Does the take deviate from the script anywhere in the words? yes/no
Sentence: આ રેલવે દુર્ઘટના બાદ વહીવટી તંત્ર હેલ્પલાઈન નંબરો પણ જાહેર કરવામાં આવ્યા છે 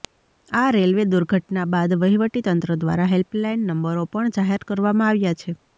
yes